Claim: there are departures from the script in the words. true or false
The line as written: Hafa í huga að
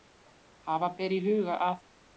true